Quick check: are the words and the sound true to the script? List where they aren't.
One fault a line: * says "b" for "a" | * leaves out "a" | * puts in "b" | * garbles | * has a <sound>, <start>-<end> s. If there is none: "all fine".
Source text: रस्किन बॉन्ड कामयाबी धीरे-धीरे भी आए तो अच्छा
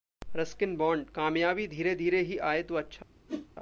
* says "ही" for "भी"
* has a whoosh, 3.3-3.5 s